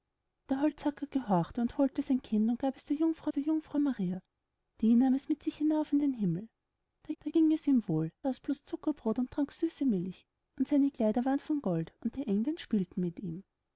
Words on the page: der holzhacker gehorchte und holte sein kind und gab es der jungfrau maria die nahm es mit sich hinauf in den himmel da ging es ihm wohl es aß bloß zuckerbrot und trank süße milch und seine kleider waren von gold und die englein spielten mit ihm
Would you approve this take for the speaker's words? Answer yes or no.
no